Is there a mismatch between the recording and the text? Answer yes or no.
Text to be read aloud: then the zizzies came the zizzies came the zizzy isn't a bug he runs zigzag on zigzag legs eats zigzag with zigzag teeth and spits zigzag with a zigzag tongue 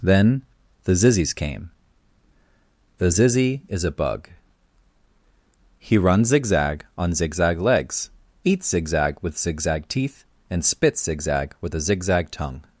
yes